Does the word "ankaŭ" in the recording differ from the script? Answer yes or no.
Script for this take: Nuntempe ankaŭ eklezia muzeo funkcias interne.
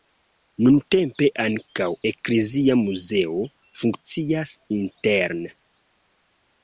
no